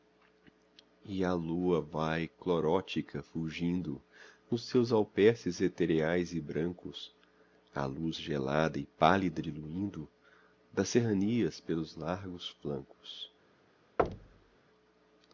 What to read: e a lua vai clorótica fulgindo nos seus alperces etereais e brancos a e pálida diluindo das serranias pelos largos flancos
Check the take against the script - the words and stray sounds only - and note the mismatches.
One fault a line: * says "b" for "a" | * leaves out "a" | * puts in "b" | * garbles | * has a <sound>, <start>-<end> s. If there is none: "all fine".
* puts in "luz gelada"
* has a thud, 14.0-14.6 s